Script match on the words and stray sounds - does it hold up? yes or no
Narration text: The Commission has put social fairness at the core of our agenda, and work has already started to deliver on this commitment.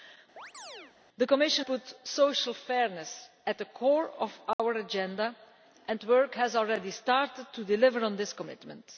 no